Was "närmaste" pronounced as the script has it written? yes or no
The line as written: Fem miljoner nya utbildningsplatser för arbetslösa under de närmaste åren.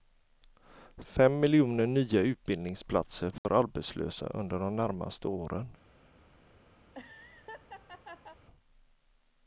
yes